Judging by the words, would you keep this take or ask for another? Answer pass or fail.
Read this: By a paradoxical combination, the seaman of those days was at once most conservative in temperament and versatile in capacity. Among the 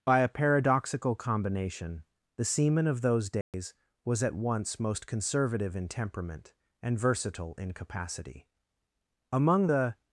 pass